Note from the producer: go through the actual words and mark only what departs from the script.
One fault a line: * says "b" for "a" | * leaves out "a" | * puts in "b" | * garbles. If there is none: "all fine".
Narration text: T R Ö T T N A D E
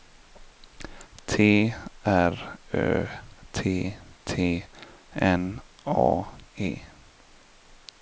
* leaves out "D"